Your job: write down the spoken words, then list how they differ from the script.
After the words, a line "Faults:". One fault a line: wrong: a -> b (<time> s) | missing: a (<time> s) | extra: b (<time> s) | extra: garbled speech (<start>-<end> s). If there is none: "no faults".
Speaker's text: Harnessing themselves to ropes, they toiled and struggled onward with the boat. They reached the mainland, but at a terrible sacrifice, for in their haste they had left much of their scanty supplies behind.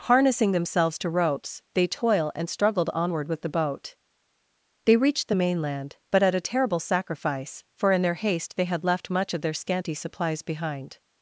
Harnessing themselves to ropes, they toil and struggled onward with the boat. They reached the mainland, but at a terrible sacrifice, for in their haste they had left much of their scanty supplies behind.
Faults:
wrong: toiled -> toil (1.9 s)